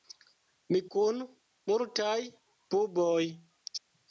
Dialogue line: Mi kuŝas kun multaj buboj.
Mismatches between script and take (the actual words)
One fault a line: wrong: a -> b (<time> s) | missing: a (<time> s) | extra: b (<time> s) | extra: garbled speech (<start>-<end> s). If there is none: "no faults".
missing: kuŝas (0.8 s)